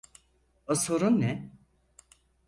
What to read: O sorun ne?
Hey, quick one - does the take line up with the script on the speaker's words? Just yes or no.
yes